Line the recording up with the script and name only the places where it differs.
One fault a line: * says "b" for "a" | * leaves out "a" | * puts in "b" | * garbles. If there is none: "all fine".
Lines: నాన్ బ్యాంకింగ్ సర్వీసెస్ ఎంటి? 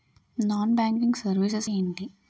all fine